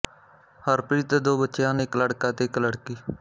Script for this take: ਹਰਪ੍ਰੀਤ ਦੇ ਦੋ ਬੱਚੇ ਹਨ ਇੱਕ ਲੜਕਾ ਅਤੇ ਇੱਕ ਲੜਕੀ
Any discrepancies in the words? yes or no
no